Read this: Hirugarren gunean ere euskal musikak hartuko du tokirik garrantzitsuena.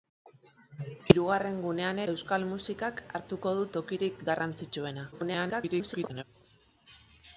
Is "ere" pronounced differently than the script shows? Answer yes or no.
yes